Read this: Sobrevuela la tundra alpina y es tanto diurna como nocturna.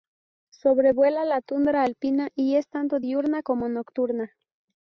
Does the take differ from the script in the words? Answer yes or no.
no